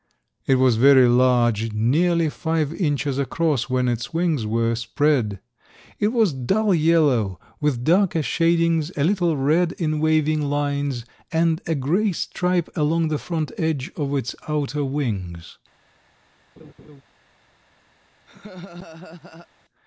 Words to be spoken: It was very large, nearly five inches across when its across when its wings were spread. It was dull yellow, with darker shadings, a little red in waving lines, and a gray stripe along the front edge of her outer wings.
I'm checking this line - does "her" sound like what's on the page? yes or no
no